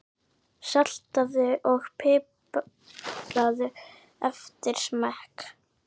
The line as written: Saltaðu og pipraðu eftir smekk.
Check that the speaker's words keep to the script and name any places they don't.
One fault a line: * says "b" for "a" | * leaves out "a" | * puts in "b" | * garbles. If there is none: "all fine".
all fine